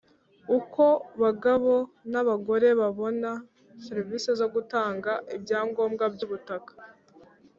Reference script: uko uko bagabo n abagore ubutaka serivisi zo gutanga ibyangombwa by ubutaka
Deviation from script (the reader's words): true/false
true